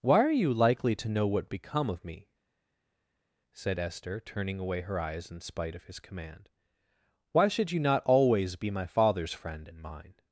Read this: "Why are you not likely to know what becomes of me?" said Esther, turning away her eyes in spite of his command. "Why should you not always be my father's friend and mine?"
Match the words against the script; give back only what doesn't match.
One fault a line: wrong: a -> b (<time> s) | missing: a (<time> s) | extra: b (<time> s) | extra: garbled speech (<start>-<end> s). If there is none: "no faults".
missing: not (0.5 s)
wrong: becomes -> become (1.5 s)